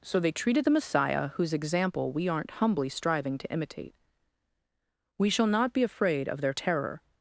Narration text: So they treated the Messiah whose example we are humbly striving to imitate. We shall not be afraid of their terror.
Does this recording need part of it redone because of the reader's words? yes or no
yes